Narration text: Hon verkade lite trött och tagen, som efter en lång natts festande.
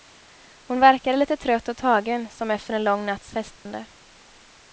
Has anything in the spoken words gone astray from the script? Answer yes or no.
no